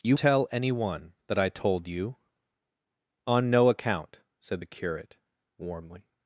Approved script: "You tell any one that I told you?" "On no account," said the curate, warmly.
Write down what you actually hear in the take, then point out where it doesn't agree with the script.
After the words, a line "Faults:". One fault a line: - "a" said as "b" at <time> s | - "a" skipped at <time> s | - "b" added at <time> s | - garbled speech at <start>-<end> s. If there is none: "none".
"You tell any one that I told you?" "On no account," said the curate, warmly.
Faults:
none